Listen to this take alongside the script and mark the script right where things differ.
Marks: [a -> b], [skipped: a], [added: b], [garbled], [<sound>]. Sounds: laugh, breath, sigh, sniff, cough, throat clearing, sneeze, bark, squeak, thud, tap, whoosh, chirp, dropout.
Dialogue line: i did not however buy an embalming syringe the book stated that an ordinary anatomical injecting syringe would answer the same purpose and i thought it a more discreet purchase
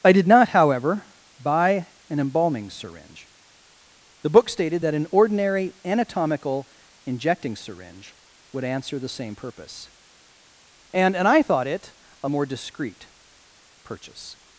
i did not however buy an embalming syringe the book stated that an ordinary anatomical injecting syringe would answer the same purpose and [added: and] i thought it a more discreet purchase